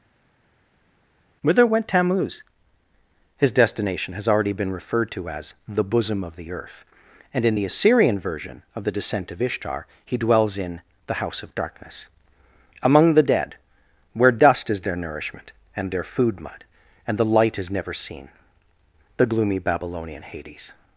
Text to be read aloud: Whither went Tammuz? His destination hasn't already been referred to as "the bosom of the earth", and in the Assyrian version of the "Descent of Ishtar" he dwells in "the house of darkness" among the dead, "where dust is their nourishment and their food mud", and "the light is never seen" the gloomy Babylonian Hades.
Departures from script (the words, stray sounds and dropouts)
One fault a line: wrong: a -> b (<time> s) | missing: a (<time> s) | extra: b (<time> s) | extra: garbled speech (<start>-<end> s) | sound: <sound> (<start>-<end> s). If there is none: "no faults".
wrong: hasn't -> has (4.1 s)